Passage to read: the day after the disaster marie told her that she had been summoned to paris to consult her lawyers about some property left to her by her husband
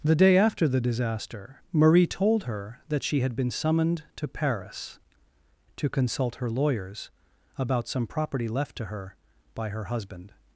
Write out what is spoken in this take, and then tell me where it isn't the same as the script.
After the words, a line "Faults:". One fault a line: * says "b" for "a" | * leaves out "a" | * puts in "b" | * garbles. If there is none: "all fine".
the day after the disaster marie told her that she had been summoned to paris to consult her lawyers about some property left to her by her husband
Faults:
all fine